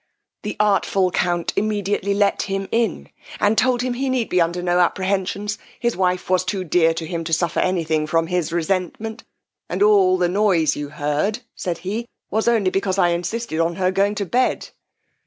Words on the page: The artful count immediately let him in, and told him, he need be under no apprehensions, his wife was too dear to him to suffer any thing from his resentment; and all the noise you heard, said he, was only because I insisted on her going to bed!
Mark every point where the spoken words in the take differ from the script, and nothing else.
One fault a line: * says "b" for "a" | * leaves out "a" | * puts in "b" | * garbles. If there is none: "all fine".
all fine